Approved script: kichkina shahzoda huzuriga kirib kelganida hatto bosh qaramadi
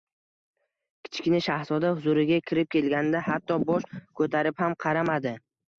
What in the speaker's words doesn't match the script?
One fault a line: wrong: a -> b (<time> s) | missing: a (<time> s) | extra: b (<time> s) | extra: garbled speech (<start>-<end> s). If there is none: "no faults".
extra: ko‘tarib ham (4.2 s)